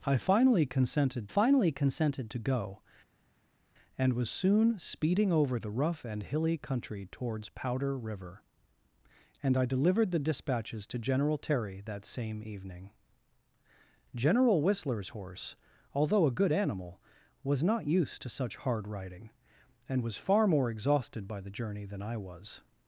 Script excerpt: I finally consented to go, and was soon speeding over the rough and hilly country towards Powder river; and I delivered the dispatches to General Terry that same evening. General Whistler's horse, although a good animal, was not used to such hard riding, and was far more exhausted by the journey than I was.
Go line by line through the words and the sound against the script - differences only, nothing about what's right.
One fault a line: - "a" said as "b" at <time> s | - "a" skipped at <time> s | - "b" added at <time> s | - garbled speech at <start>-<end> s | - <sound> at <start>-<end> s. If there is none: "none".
- "finally consented" added at 1.3 s